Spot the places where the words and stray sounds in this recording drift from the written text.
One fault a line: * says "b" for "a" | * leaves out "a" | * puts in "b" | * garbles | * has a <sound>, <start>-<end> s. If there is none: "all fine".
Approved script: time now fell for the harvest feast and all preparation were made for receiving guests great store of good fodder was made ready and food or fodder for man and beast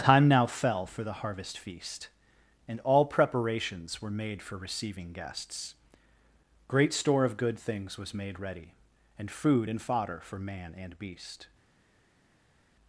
* says "preparations" for "preparation"
* says "things" for "fodder"
* says "and" for "or"